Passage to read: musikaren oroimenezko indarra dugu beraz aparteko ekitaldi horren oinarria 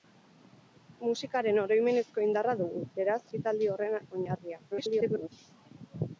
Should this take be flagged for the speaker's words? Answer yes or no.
yes